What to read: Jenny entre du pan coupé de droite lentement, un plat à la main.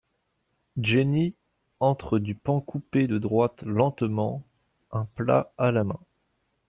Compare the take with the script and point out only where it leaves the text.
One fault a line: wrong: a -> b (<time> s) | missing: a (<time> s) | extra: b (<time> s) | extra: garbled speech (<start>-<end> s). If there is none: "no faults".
no faults